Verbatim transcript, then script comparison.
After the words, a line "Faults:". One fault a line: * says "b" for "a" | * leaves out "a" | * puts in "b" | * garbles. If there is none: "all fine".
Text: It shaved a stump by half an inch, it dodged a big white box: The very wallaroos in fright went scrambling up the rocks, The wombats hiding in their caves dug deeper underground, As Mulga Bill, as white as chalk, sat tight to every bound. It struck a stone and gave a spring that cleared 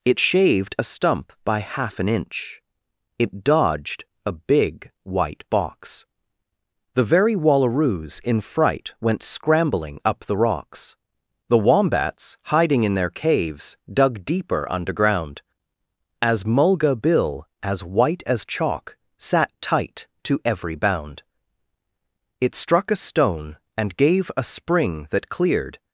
It shaved a stump by half an inch, it dodged a big white box: The very wallaroos in fright went scrambling up the rocks, The wombats hiding in their caves dug deeper underground, As Mulga Bill, as white as chalk, sat tight to every bound. It struck a stone and gave a spring that cleared
Faults:
all fine